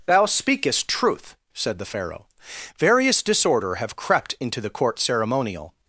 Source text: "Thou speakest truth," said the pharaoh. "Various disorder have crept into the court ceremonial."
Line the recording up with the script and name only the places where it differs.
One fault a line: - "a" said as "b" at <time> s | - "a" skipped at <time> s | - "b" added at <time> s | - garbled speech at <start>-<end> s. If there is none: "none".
none